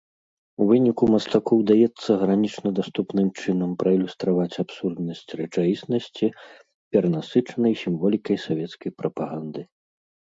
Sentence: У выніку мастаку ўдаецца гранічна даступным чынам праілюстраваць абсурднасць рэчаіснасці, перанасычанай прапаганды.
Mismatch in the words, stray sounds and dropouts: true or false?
true